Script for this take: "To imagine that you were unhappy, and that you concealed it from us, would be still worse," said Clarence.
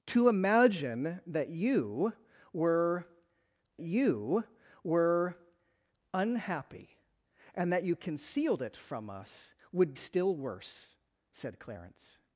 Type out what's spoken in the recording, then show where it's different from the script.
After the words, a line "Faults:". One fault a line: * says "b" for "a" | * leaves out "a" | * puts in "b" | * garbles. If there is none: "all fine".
"To imagine that you were you were unhappy, and that you concealed it from us, would still worse," said Clarence.
Faults:
* puts in "you were"
* leaves out "be"